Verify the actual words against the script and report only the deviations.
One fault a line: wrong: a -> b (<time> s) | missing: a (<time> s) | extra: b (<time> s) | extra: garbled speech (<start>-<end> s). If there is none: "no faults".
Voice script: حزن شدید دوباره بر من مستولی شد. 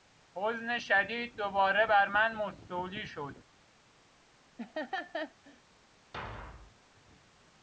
no faults